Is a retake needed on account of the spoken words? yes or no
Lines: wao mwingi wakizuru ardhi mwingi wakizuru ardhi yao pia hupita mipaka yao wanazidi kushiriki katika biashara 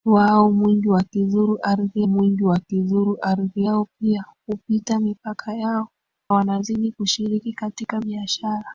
no